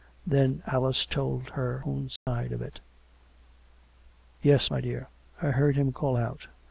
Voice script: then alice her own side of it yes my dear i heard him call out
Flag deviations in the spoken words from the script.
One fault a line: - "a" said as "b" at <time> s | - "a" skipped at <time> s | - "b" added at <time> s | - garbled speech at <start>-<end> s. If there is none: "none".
- "told" added at 1.1 s